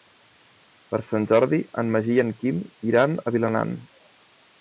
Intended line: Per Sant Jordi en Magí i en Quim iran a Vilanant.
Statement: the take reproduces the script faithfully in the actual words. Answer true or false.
true